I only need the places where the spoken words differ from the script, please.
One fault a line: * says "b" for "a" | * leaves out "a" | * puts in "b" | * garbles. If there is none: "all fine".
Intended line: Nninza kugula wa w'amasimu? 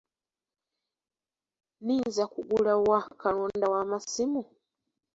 * puts in "kalonda"